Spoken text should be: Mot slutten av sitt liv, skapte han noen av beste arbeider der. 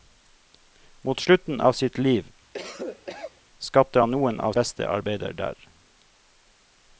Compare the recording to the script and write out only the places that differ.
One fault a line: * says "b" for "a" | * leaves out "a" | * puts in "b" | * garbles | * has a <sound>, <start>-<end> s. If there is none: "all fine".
* has a cough, 2.5-3.4 s